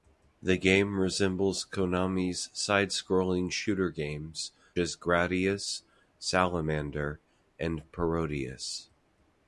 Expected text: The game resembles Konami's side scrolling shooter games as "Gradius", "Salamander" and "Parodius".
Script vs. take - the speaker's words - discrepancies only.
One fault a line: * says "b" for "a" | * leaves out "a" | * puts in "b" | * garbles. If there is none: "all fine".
all fine